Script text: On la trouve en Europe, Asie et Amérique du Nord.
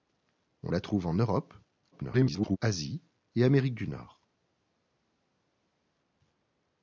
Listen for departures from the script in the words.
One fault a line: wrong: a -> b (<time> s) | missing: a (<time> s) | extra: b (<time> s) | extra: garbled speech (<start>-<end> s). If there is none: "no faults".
extra: garbled speech (1.9-2.6 s)